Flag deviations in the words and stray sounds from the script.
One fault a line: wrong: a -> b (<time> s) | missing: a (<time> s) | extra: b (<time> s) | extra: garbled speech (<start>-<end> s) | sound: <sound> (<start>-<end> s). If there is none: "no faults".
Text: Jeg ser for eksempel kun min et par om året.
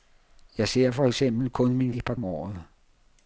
no faults